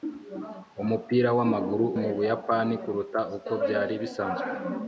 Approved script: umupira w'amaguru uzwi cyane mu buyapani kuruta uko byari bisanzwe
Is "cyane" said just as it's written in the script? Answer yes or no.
no